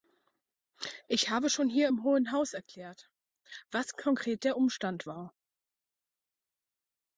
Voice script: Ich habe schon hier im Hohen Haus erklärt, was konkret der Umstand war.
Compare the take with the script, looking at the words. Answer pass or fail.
pass